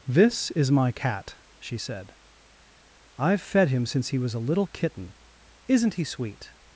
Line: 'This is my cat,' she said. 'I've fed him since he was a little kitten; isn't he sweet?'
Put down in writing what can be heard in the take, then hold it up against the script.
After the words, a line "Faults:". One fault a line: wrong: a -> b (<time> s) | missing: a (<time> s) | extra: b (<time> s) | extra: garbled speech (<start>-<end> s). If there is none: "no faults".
'This is my cat,' she said. 'I've fed him since he was a little kitten; isn't he sweet?'
Faults:
no faults